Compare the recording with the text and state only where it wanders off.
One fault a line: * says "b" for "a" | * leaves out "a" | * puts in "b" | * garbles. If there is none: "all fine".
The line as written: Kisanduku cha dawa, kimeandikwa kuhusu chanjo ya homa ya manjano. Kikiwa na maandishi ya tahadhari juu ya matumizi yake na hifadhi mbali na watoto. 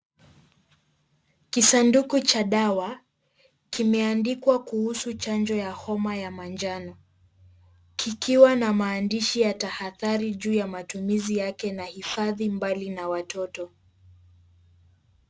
all fine